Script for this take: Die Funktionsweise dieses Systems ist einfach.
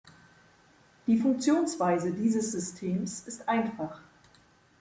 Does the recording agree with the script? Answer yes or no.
yes